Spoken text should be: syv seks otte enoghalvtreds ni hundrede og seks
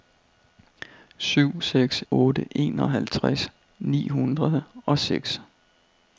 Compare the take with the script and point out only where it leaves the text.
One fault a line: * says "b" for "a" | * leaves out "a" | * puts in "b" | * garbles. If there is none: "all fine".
all fine